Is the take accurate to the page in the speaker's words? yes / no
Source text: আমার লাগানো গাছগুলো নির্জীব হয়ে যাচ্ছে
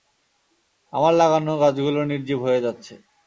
yes